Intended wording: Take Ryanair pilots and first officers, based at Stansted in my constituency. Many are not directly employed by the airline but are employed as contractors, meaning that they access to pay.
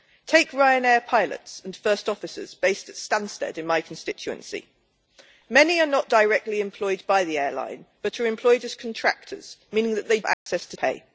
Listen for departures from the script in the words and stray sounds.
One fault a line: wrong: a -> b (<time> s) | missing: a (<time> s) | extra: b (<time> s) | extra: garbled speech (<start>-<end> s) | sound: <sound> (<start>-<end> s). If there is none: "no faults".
sound: dropout (10.3-10.5 s)